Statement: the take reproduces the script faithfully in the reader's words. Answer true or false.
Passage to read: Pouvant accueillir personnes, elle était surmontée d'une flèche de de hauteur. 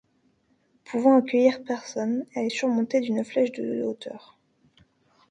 false